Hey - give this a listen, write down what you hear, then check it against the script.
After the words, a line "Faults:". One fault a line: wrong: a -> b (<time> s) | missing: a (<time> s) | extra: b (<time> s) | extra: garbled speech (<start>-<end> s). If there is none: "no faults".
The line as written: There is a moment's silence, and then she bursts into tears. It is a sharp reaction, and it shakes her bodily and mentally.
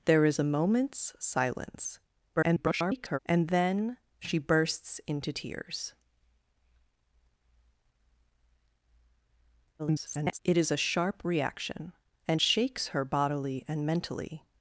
There is a moment's silence, [garbled] and then she bursts into tears. [garbled] It is a sharp reaction, and shakes her bodily and mentally.
Faults:
extra: garbled speech (2.4-3.2 s)
extra: garbled speech (9.8-10.4 s)
missing: it (12.4 s)